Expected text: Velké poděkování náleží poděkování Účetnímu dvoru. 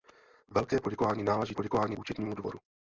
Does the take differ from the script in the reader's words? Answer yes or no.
no